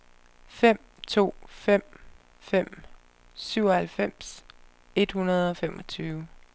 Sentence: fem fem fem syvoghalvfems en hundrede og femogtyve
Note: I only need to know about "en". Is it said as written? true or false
false